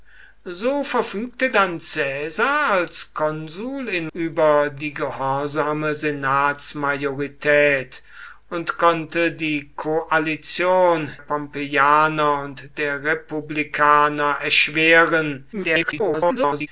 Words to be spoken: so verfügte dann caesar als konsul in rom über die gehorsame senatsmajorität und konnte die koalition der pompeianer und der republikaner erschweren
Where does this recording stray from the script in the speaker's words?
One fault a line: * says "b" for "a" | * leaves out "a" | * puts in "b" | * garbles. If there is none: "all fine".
* leaves out "rom"
* leaves out "der"
* garbles